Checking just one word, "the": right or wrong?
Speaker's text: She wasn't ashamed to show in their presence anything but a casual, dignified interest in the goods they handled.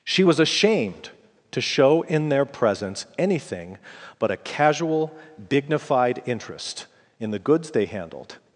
right